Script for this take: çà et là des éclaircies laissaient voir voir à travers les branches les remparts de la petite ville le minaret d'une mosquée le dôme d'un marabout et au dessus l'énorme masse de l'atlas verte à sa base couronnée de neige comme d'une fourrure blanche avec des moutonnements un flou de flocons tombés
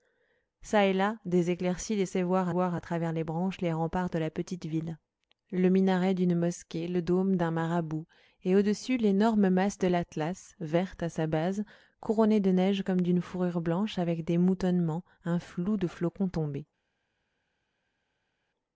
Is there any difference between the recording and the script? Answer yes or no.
no